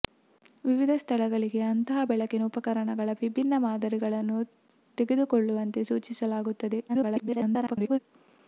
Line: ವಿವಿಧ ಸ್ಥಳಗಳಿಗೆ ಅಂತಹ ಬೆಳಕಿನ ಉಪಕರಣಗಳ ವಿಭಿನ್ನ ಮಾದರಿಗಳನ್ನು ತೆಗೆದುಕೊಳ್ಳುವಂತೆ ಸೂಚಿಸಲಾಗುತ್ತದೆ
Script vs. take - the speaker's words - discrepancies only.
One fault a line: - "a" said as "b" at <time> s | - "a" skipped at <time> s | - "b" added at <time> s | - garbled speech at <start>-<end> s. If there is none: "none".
- garbled speech at 6.9-8.0 s